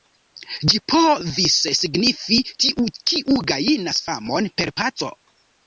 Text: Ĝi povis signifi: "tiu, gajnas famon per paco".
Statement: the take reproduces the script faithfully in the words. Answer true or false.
false